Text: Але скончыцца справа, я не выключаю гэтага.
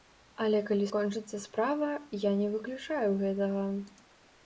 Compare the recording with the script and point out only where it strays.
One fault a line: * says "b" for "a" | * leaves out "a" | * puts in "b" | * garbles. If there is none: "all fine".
* puts in "калі"